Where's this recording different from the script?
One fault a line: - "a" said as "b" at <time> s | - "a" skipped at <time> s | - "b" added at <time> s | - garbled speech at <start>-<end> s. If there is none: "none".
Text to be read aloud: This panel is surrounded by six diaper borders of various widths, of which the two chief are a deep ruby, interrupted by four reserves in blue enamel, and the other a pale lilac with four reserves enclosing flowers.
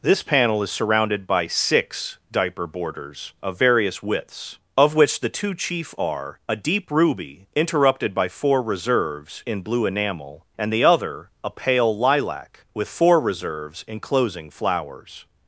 none